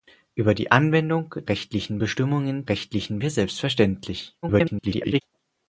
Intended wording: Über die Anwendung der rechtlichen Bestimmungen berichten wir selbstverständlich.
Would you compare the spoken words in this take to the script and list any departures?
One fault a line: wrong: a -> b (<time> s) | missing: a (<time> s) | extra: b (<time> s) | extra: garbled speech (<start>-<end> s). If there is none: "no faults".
missing: der (1.4 s)
wrong: berichten -> rechtlichen (2.7 s)
extra: garbled speech (4.4-5.2 s)